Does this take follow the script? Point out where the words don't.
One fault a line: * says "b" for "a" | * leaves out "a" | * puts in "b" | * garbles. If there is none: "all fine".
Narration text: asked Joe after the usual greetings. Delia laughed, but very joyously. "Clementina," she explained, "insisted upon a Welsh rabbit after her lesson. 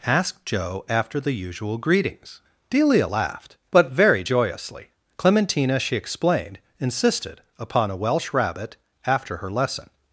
all fine